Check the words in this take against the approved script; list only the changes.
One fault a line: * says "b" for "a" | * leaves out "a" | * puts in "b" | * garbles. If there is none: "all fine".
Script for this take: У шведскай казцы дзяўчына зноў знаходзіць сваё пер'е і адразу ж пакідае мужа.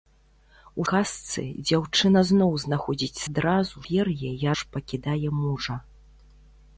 * leaves out "шведскай"
* says "адразу" for "сваё"
* leaves out "адразу"